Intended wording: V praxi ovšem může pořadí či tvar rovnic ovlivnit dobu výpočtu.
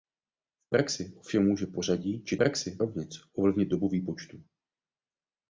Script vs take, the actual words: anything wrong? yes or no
yes